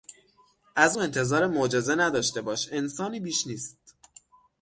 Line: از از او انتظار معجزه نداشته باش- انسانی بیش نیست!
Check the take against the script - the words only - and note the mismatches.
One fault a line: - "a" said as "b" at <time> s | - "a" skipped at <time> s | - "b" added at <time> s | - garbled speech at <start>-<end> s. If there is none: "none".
- "از" skipped at 1.0 s